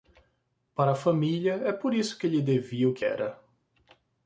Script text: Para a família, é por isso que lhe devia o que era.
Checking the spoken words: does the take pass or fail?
pass